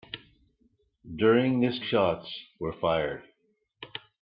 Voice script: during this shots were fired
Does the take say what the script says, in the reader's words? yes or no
yes